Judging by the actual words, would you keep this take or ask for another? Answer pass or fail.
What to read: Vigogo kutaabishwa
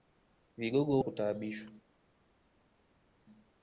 pass